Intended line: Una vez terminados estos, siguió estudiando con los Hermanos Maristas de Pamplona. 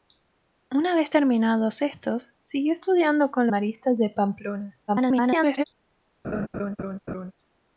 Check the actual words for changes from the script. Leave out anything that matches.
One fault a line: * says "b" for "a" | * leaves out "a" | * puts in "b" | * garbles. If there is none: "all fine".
* leaves out "los Hermanos"
* garbles